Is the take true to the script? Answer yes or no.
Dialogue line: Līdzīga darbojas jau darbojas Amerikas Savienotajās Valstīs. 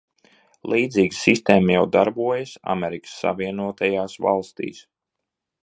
no